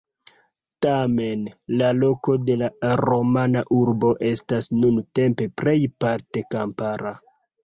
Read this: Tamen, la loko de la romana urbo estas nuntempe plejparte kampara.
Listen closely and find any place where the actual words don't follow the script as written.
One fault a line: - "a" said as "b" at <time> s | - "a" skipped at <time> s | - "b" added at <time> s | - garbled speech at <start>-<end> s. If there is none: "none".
none